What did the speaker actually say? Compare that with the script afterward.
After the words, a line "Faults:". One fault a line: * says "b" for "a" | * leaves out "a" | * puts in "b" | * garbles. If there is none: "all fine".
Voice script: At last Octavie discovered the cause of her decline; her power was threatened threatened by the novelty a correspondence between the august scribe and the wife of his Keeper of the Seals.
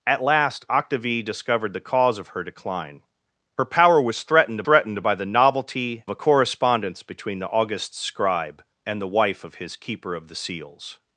At last Octavie discovered the cause of her decline; her power was threatened threatened by the novelty a correspondence between the august scribe and the wife of his Keeper of the Seals.
Faults:
all fine